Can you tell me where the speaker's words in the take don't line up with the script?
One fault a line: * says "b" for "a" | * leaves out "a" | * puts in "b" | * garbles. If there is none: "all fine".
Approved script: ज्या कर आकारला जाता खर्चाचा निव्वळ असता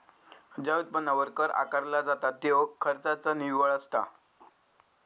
* puts in "उत्पन्नावर"
* puts in "त्यो"